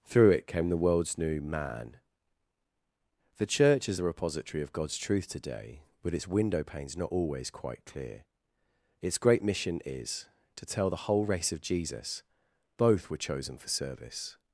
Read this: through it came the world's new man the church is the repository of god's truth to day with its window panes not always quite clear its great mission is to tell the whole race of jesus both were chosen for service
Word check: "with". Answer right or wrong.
wrong